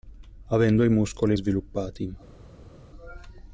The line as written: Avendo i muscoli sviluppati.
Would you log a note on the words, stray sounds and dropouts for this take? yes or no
no